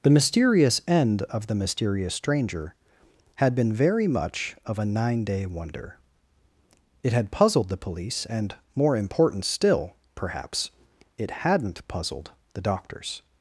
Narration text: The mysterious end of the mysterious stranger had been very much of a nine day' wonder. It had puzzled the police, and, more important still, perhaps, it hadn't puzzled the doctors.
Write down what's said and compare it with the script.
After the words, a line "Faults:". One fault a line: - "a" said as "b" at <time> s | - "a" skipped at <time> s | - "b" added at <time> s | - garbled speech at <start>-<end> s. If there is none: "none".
The mysterious end of the mysterious stranger had been very much of a nine day' wonder. It had puzzled the police, and, more important still, perhaps, it hadn't puzzled the doctors.
Faults:
none